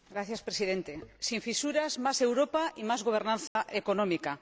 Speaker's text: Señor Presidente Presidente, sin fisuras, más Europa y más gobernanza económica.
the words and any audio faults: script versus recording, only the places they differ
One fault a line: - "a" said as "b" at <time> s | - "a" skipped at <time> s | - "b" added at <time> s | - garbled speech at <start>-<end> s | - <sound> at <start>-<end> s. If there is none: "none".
- "Presidente" skipped at 0.9 s
- dropout at 3.5-3.6 s